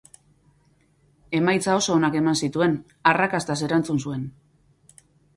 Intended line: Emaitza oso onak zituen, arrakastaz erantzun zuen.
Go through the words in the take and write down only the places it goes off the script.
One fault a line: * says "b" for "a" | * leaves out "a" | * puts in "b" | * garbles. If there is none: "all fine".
* puts in "eman"